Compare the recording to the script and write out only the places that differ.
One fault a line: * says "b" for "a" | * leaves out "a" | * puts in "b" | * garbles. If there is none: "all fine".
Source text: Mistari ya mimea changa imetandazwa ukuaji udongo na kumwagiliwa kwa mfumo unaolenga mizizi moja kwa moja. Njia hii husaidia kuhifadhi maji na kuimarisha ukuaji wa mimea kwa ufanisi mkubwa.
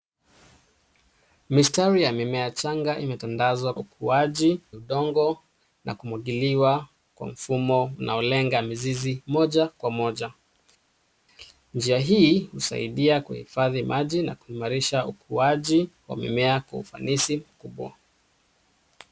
all fine